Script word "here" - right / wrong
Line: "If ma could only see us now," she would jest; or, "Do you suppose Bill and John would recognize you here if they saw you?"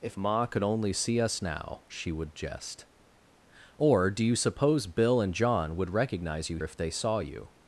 wrong